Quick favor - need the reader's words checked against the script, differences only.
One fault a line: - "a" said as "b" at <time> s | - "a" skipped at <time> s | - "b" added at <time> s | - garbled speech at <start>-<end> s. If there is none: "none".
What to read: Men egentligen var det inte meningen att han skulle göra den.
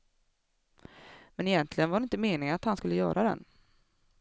none